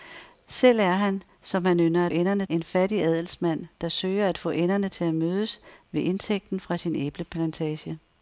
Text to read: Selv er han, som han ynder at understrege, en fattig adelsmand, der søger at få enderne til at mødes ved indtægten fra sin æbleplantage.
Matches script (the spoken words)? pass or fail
fail